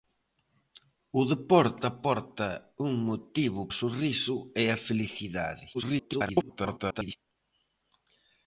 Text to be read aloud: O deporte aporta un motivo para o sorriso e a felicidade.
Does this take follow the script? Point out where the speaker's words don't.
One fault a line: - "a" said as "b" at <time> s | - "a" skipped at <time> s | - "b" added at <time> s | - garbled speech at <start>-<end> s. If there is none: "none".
- "para" skipped at 3.6 s
- garbled speech at 5.7-7.2 s